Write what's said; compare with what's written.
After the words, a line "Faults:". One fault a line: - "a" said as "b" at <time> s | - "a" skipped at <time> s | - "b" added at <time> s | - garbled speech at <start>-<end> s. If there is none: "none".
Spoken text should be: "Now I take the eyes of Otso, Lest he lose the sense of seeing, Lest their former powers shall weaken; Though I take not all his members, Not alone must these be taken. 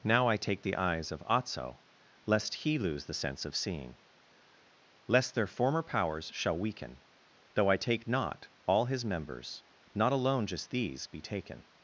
"Now I take the eyes of Otso, Lest he lose the sense of seeing, Lest their former powers shall weaken; Though I take not all his members, Not alone just these be taken.
Faults:
- "must" said as "just" at 10.5 s